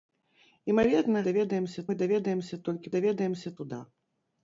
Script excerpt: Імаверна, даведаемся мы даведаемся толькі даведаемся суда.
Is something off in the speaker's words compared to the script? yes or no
no